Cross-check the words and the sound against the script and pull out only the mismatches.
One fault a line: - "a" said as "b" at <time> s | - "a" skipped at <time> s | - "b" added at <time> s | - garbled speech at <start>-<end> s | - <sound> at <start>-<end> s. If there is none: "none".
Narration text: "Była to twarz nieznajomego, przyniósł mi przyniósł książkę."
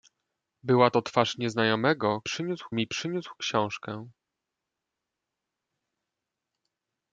none